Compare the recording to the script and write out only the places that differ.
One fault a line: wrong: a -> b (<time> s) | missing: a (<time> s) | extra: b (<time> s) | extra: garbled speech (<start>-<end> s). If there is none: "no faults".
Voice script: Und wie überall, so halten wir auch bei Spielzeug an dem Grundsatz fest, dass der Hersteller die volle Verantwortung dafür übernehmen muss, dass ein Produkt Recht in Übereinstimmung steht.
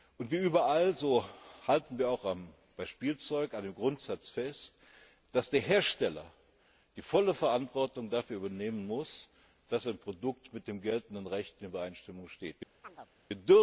extra: mit dem geltenden (10.5 s)